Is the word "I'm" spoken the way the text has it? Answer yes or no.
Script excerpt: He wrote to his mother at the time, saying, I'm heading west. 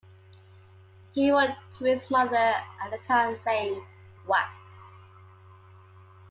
no